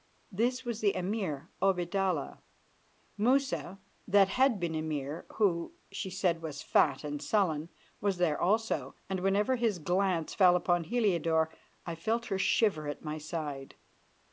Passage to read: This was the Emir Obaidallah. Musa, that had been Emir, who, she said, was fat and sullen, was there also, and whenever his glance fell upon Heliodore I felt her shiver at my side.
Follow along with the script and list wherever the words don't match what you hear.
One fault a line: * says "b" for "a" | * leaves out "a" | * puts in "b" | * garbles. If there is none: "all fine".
all fine